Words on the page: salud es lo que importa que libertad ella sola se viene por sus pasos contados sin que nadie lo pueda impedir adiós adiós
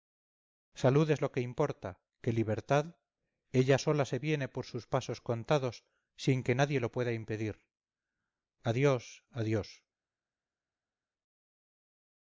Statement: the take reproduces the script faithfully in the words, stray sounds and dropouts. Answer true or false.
true